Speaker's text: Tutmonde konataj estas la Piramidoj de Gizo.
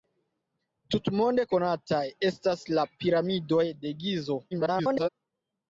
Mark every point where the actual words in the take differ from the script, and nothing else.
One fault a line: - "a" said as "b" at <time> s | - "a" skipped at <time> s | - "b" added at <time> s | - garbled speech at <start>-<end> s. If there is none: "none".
- garbled speech at 4.5-5.1 s